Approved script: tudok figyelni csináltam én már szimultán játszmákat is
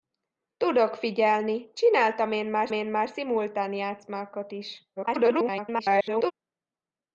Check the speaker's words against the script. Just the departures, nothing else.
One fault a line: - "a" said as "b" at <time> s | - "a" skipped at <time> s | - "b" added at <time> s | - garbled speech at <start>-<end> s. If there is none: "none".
- "én már" added at 2.7 s
- garbled speech at 5.0-6.3 s